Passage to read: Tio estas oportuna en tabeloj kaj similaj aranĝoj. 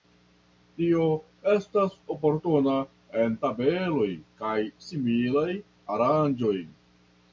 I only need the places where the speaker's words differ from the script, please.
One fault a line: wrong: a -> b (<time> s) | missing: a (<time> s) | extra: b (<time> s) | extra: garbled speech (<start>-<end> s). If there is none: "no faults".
no faults